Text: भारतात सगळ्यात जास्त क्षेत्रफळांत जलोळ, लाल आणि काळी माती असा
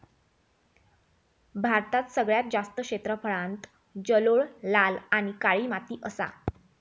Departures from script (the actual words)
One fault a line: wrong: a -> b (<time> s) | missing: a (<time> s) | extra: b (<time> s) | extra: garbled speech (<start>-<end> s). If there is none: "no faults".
no faults